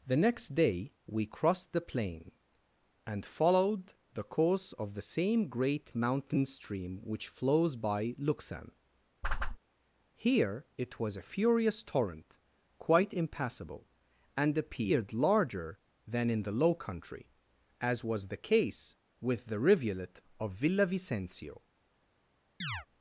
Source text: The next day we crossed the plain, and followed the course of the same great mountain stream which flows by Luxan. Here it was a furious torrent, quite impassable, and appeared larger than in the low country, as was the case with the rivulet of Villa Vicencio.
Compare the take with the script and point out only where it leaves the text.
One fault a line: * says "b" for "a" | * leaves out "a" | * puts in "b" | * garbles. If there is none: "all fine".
all fine